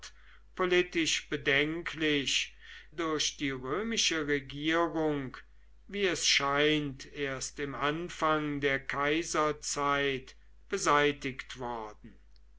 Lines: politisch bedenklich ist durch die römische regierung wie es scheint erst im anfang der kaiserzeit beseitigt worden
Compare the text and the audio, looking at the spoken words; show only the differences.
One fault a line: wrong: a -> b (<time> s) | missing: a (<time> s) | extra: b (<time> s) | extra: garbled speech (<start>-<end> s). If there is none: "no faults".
missing: ist (2.5 s)